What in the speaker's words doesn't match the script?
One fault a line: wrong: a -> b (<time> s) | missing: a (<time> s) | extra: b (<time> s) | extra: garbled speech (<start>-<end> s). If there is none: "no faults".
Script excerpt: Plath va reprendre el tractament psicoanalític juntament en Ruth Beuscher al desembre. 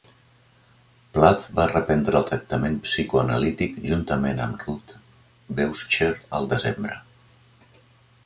wrong: en -> amb (4.5 s)